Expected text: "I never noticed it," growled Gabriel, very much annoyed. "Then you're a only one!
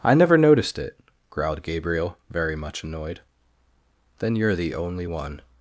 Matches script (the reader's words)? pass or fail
fail